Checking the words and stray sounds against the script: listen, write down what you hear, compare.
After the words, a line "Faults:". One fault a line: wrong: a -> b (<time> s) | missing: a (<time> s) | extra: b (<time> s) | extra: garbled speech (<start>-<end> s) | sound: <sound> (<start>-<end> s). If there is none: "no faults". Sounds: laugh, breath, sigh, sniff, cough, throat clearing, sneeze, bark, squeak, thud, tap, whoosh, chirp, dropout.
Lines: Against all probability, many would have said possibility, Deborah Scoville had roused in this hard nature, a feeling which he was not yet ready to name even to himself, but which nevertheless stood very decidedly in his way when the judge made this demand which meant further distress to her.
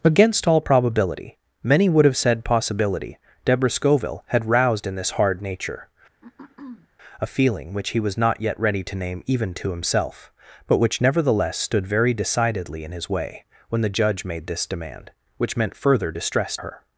Against all probability, many would have said possibility, Deborah Scoville had roused in this hard nature, a feeling which he was not yet ready to name even to himself, but which nevertheless stood very decidedly in his way when the judge made this demand which meant further distress her.
Faults:
sound: throat clearing (6.2-6.9 s)
missing: to (16.6 s)